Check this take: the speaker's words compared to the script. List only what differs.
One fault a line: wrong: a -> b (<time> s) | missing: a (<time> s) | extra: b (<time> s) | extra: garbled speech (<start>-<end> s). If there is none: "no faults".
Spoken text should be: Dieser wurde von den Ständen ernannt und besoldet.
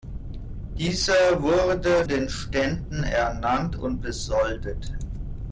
missing: von (2.0 s)